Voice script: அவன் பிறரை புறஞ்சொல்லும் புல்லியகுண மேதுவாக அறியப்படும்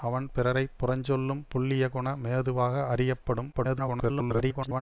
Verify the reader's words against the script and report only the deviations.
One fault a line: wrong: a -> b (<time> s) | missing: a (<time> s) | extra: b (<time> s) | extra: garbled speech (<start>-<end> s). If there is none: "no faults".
extra: garbled speech (3.5-4.8 s)